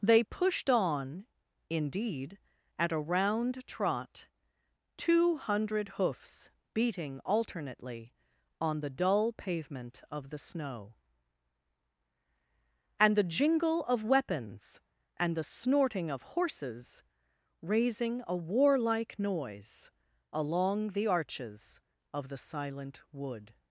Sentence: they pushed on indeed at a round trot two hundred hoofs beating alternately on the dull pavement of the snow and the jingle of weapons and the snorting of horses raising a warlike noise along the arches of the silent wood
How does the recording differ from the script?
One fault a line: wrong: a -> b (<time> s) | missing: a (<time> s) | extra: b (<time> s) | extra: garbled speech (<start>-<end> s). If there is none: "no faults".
no faults